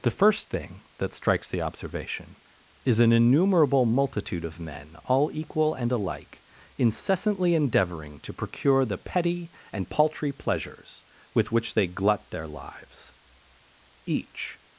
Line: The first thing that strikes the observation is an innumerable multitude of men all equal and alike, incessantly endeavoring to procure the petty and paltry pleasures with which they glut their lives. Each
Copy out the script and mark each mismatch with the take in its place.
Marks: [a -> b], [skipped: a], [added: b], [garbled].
The first thing that strikes the observation is an innumerable multitude of men all equal and alike, incessantly endeavoring to procure the petty and paltry pleasures with which they glut their lives. Each